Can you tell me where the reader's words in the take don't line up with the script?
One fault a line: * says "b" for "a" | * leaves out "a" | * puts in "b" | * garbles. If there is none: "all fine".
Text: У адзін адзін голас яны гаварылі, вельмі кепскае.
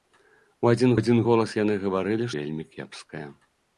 all fine